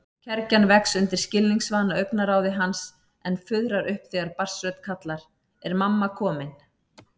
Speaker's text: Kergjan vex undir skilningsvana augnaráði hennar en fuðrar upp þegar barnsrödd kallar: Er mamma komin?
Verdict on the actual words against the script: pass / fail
fail